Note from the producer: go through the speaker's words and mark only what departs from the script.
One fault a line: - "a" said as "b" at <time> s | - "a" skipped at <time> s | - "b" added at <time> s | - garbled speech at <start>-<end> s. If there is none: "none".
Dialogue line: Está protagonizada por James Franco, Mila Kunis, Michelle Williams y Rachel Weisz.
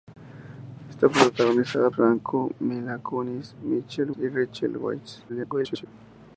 - "por James" skipped at 1.9 s
- "Williams" skipped at 4.1 s
- garbled speech at 5.3-5.9 s